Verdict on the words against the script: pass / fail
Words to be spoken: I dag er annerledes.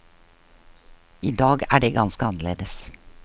fail